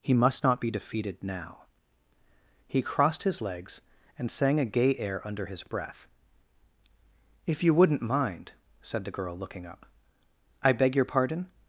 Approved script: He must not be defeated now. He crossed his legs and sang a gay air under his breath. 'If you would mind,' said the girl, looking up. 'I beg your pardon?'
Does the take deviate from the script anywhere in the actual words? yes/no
yes